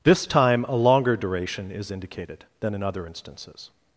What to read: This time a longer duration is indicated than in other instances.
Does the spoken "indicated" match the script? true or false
true